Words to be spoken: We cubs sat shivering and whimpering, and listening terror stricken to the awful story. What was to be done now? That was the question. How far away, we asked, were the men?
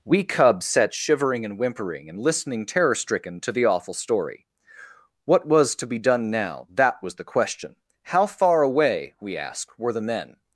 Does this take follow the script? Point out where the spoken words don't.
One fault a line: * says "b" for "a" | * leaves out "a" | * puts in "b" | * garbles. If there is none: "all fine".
all fine